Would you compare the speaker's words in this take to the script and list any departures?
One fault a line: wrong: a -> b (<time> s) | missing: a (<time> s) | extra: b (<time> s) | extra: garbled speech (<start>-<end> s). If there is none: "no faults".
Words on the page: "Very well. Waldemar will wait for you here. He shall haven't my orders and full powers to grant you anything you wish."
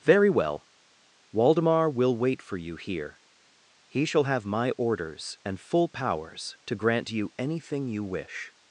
wrong: haven't -> have (4.2 s)